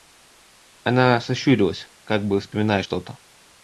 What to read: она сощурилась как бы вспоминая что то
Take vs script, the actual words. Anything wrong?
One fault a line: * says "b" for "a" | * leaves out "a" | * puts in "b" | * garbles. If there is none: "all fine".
all fine